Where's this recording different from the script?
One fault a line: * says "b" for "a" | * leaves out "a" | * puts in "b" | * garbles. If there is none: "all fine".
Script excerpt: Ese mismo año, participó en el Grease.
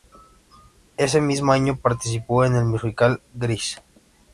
* puts in "musical"